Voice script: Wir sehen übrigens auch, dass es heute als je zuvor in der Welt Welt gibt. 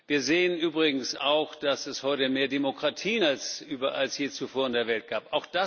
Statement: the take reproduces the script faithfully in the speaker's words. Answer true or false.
false